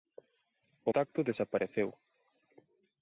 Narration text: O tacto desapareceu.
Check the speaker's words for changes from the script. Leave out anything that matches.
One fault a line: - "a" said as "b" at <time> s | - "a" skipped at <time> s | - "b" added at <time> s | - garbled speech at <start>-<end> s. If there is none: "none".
none